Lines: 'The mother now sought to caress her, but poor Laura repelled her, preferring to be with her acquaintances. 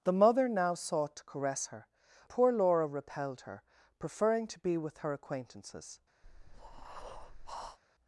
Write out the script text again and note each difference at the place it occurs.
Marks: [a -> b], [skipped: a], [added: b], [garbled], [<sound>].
'The mother now sought to caress her, [skipped: but] poor Laura repelled her, preferring to be with her acquaintances. [breath]